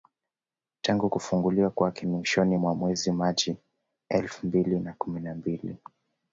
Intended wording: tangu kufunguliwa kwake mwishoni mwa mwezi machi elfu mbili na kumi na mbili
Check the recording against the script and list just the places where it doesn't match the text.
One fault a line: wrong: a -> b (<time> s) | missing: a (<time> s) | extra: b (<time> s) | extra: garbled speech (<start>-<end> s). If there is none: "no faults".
no faults